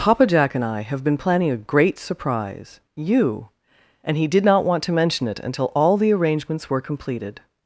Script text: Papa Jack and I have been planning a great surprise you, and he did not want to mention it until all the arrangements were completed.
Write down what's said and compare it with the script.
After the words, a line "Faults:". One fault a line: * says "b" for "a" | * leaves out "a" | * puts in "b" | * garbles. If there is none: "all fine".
Papa Jack and I have been planning a great surprise you, and he did not want to mention it until all the arrangements were completed.
Faults:
all fine